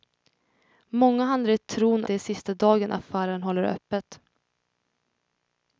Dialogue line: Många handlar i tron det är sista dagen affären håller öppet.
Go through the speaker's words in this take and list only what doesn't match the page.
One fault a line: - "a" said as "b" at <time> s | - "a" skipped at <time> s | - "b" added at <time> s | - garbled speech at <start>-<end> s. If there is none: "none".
none